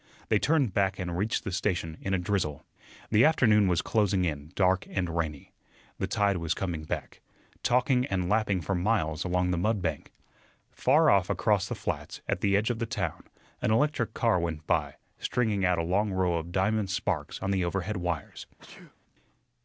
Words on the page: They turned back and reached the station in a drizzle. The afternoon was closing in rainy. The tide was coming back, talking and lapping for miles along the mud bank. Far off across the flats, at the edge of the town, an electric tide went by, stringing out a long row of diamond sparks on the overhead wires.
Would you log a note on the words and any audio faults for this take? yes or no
yes